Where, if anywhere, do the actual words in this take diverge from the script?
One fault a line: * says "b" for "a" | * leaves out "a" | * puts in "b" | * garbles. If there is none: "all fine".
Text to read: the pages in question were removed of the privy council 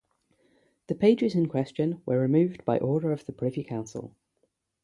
* puts in "by order"